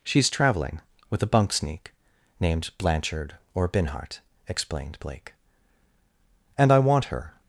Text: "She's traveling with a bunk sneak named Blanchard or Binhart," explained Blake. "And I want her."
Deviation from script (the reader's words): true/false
false